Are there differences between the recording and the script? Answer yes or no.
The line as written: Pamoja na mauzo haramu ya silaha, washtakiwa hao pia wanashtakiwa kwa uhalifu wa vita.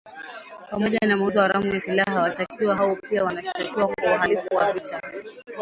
no